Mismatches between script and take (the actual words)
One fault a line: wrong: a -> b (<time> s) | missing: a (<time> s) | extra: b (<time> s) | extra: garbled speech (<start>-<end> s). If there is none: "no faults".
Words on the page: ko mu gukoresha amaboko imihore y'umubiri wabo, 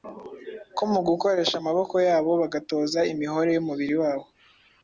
extra: yabo bagatoza (2.1 s)